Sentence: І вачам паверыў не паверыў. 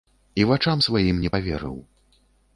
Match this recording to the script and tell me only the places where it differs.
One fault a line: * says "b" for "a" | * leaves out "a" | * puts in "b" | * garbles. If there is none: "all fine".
* says "сваім" for "паверыў"